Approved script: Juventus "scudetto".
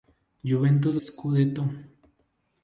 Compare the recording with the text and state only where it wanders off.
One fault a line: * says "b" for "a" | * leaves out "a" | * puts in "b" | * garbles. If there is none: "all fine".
all fine